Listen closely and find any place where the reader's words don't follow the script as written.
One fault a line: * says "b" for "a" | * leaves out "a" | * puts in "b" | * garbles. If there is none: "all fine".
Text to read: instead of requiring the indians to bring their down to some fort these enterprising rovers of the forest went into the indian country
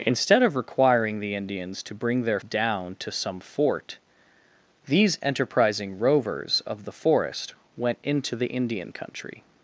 all fine